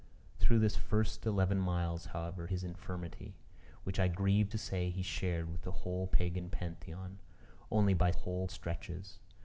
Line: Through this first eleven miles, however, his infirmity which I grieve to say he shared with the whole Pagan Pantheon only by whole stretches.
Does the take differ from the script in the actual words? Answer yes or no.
no